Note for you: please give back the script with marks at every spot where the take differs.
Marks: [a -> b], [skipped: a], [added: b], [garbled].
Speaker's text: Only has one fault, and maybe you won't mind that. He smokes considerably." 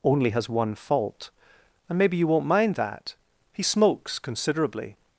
Only has one fault, and maybe you won't mind that. He smokes considerably."